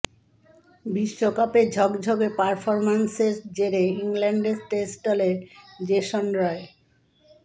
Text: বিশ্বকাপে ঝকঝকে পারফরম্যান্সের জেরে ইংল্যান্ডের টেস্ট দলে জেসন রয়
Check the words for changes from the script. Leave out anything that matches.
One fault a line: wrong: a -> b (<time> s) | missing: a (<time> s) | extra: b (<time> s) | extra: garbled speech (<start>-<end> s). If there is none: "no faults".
no faults